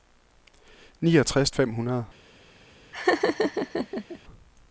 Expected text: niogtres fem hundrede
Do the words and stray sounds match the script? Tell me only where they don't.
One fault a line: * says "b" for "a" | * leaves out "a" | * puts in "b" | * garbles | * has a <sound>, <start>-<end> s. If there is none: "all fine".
* has a laugh, 2.9-4.2 s